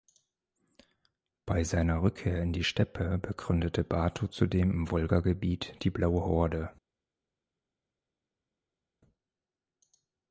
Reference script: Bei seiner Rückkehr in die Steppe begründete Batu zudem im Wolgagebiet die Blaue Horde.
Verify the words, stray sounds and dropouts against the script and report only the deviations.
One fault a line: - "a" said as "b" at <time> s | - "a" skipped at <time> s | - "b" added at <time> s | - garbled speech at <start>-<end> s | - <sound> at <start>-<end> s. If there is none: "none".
none